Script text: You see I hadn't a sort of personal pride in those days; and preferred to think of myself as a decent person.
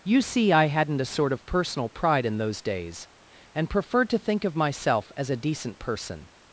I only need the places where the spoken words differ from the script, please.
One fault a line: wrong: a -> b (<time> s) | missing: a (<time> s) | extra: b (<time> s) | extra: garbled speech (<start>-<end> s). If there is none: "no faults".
no faults